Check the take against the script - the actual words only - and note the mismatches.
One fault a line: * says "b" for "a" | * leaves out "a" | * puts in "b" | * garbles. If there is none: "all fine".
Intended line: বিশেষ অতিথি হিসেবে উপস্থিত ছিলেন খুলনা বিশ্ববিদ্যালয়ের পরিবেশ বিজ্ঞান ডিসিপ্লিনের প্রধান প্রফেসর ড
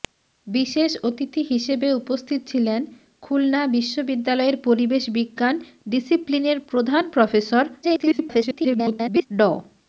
* garbles